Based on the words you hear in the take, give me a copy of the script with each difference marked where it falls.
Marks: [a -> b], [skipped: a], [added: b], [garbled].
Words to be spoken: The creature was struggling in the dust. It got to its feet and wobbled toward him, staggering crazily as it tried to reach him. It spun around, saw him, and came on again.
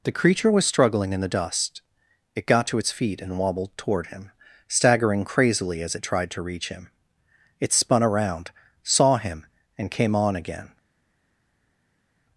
The creature was struggling in the dust. It got to its feet and wobbled toward him, staggering crazily as it tried to reach him. It spun around, saw him, and came on again.